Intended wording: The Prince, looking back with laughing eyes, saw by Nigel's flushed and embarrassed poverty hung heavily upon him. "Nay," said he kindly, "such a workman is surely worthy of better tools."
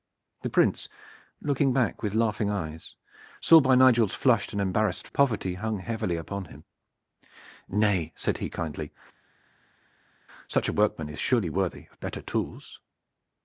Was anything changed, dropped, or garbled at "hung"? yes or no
no